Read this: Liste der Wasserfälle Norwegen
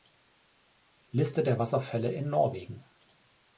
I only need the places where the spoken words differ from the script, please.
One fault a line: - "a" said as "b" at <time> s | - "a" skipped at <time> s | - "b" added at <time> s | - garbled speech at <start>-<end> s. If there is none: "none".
- "in" added at 2.1 s